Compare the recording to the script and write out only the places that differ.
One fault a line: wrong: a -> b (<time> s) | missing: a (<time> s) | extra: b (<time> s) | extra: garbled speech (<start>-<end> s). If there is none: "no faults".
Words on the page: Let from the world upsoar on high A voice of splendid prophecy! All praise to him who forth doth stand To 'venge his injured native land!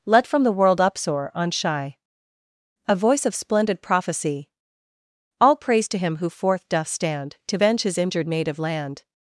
wrong: high -> shy (1.5 s)